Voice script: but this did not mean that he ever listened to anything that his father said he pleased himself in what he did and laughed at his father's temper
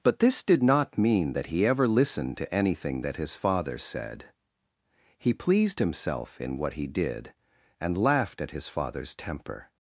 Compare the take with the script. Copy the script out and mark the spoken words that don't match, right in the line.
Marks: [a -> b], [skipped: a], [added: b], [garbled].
but this did not mean that he ever listened to anything that his father said he pleased himself in what he did and laughed at his father's temper